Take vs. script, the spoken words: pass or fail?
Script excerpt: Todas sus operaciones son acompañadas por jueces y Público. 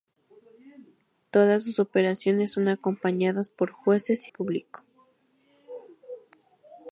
pass